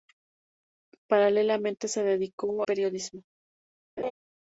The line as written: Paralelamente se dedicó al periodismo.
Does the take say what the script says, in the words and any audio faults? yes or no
no